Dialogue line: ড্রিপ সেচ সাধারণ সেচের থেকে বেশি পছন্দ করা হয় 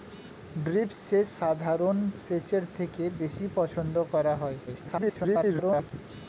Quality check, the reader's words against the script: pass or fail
fail